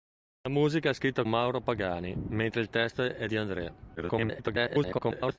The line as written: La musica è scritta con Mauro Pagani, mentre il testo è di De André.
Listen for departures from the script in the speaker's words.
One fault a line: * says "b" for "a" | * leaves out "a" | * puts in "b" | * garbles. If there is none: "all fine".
* leaves out "con"
* leaves out "di"
* garbles